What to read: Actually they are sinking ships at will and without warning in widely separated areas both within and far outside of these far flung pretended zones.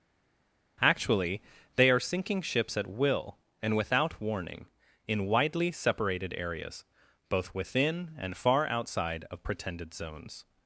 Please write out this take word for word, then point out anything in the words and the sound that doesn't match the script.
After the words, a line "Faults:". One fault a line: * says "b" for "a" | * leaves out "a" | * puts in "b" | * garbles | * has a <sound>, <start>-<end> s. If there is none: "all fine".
Actually they are sinking ships at will and without warning in widely separated areas both within and far outside of pretended zones.
Faults:
* leaves out "these far flung"